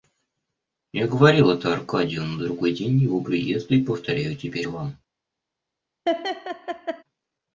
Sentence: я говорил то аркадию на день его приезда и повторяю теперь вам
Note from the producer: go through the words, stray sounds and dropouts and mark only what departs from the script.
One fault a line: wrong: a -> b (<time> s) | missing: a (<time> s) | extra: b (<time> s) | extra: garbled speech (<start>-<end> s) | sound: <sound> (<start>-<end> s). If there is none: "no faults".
wrong: то -> это (1.5 s)
extra: другой (2.4 s)
sound: laugh (6.1-7.0 s)